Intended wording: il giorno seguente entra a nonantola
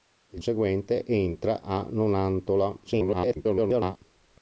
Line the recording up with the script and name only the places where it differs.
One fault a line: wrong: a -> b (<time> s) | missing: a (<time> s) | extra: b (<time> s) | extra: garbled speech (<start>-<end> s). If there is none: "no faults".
missing: giorno (0.4 s)
extra: garbled speech (2.8-4.0 s)